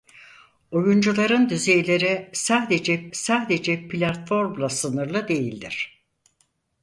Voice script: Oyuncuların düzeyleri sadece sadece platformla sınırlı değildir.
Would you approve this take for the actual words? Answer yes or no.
yes